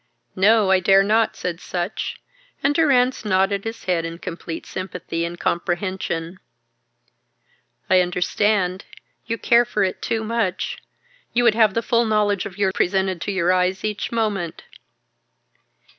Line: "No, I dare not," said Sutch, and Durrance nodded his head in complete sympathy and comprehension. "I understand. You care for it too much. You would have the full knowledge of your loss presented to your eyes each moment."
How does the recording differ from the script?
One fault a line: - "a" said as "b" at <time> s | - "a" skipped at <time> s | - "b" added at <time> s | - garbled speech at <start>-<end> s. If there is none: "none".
- "loss" skipped at 12.7 s